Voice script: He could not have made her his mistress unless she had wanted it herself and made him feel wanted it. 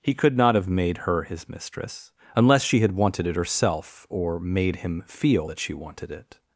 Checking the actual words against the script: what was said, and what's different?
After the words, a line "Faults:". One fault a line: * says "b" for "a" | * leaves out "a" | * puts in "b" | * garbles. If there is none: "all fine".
He could not have made her his mistress unless she had wanted it herself or made him feel that she wanted it.
Faults:
* says "or" for "and"
* puts in "that she"